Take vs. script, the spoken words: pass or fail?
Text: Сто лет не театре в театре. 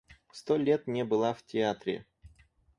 fail